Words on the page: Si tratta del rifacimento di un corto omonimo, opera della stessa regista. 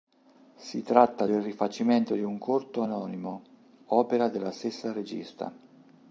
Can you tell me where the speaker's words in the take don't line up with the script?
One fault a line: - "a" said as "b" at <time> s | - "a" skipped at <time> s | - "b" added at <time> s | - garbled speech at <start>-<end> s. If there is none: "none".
none